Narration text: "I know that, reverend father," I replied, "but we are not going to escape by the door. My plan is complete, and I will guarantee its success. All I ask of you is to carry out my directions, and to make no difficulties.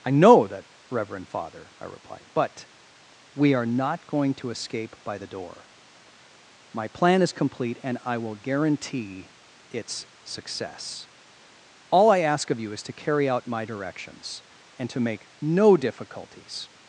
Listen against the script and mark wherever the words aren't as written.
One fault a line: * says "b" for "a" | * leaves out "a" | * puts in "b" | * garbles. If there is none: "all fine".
all fine